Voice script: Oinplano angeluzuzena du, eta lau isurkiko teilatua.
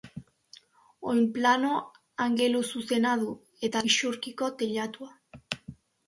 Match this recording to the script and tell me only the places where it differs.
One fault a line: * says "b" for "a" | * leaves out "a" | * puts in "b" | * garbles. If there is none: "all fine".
* leaves out "lau"